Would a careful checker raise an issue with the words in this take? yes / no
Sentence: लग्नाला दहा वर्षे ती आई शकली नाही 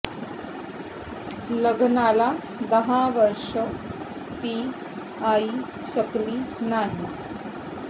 no